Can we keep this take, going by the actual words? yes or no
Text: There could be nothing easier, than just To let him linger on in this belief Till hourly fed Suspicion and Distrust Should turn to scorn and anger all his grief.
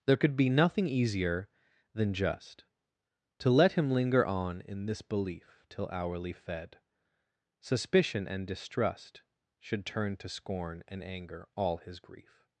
yes